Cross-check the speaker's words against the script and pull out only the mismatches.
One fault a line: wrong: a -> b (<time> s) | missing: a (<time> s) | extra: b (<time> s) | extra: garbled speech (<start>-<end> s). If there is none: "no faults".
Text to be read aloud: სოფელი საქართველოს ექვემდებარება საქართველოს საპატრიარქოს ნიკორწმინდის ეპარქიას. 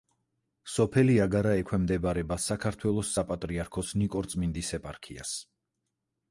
wrong: საქართველოს -> აგარა (1.2 s)